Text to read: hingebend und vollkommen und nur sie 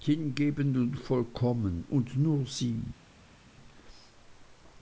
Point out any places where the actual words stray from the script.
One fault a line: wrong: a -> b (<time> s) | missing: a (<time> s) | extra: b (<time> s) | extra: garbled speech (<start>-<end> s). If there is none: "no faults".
no faults